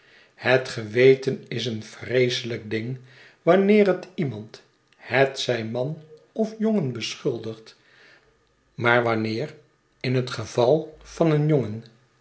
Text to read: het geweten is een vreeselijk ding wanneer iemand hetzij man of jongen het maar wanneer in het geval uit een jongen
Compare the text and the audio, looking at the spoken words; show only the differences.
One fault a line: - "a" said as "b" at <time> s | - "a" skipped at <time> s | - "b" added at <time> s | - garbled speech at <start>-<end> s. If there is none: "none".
- "het" added at 3.9 s
- "het" said as "beschuldigt" at 6.9 s
- "uit" said as "van" at 11.0 s